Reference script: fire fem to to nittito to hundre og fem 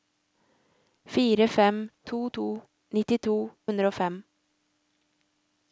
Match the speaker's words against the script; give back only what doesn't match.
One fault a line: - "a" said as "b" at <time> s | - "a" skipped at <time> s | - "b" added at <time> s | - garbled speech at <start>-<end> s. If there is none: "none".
- "to" skipped at 3.4 s